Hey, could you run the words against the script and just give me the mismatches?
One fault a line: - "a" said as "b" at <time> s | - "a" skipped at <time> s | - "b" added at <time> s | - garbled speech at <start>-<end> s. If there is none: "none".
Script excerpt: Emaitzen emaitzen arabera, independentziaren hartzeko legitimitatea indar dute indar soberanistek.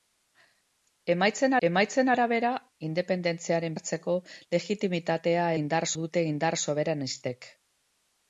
none